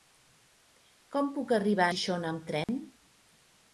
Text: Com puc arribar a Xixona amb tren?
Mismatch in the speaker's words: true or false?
true